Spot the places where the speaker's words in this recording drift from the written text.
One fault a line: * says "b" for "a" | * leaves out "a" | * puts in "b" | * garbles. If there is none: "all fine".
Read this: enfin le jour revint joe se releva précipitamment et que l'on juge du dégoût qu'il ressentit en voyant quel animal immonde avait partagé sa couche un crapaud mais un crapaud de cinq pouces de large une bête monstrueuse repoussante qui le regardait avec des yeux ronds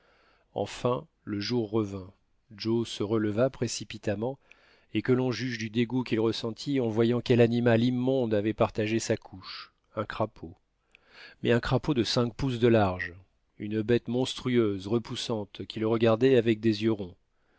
all fine